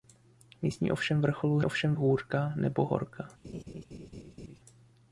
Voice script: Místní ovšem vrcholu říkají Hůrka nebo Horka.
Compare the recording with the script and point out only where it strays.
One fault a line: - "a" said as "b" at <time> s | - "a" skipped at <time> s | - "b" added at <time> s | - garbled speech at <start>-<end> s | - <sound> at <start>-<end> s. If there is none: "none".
- "říkají" said as "ovšem" at 1.6 s
- laugh at 3.4-4.6 s